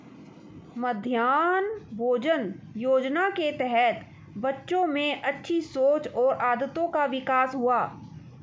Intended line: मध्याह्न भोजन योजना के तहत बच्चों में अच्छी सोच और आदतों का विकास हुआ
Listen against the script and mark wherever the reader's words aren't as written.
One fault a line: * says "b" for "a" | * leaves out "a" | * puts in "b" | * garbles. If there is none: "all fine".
all fine